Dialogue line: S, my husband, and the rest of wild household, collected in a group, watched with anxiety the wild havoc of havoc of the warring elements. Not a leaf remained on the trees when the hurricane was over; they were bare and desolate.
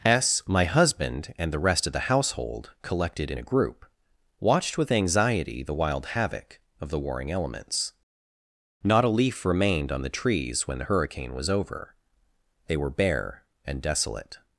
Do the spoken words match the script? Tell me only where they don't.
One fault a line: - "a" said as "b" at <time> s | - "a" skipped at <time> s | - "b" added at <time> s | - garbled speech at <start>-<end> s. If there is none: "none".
- "wild" said as "the" at 1.9 s
- "havoc of" skipped at 6.9 s